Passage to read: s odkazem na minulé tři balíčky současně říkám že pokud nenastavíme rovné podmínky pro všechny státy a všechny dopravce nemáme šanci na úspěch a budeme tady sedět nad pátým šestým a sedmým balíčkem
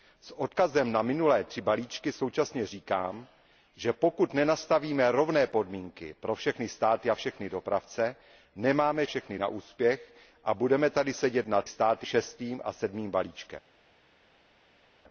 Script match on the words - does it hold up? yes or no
no